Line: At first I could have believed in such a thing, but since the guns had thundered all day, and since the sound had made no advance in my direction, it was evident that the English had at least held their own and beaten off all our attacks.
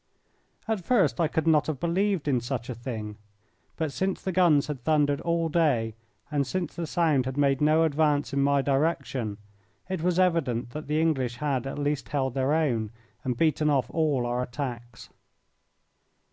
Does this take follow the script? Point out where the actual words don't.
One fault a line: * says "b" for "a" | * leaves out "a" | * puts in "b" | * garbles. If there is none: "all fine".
* puts in "not"